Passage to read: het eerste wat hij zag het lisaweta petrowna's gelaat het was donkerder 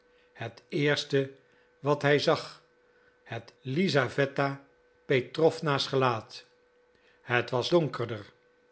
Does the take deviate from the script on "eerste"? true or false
false